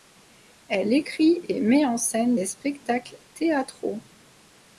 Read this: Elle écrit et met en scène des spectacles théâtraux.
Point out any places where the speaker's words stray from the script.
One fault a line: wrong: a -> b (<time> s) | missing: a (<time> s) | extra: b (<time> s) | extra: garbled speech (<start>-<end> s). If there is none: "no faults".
no faults